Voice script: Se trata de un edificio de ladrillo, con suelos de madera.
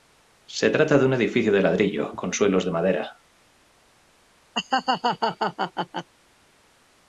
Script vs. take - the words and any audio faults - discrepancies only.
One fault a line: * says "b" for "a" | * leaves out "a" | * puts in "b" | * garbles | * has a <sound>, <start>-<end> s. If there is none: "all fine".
* has a laugh, 4.5-6.1 s